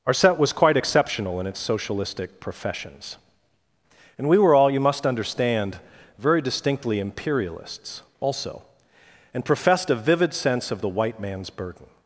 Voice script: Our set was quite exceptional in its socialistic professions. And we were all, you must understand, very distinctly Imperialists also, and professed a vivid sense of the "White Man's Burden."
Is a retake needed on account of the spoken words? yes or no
no